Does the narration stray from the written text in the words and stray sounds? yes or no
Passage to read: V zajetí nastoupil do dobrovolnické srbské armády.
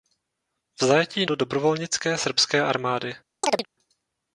yes